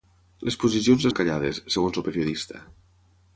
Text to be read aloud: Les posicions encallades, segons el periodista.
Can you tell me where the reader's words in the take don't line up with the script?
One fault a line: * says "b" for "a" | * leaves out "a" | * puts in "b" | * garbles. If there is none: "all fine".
all fine